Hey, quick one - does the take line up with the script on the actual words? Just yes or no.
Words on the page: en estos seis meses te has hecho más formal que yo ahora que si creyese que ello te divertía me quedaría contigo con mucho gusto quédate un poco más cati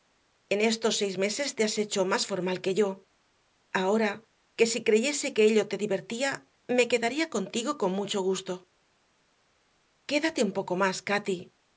yes